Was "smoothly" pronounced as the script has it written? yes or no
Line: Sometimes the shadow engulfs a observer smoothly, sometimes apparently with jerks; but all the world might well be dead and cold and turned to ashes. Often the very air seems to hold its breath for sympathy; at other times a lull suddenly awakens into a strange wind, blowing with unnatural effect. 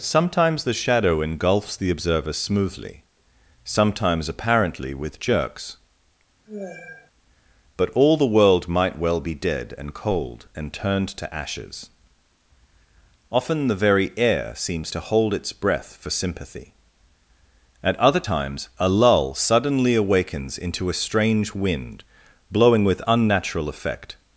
yes